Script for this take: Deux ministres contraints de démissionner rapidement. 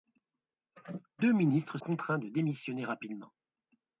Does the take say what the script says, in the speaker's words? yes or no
yes